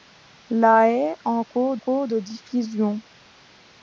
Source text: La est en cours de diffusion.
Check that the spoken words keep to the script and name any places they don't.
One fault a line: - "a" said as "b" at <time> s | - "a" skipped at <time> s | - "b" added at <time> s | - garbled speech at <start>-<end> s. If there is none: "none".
- "cours" added at 1.8 s